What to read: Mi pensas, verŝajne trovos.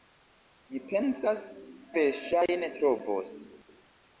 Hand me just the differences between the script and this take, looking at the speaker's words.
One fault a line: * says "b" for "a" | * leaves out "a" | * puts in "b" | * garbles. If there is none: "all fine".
all fine